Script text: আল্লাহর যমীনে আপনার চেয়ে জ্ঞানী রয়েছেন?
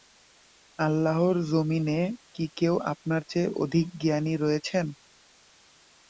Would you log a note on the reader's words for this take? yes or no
yes